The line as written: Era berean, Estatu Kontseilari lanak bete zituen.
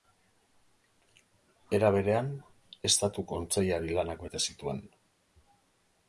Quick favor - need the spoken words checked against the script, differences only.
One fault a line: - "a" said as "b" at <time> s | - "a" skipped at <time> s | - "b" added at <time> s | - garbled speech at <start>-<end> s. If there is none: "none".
none